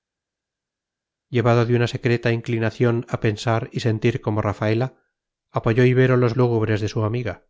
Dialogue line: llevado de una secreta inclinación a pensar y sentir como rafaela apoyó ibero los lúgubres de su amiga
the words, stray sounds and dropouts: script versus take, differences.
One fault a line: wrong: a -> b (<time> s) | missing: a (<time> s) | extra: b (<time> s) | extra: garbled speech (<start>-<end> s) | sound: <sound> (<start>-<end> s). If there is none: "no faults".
no faults